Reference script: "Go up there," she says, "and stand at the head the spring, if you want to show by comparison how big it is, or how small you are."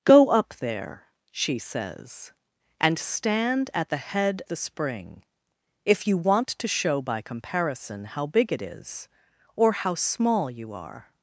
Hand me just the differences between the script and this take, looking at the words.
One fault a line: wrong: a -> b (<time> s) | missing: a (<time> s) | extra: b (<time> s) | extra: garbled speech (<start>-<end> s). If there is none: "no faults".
no faults